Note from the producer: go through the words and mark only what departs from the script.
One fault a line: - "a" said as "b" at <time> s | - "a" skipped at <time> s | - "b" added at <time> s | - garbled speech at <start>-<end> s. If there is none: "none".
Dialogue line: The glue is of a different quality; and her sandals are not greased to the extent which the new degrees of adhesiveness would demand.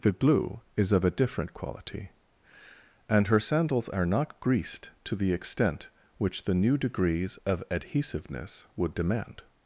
none